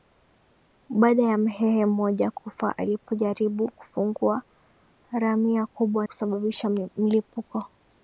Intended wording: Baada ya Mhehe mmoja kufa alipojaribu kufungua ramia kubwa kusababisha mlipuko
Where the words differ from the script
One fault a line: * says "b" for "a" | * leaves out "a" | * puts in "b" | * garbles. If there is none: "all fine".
all fine